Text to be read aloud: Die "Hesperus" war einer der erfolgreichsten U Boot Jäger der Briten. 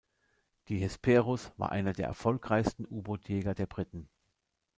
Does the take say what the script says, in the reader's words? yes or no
yes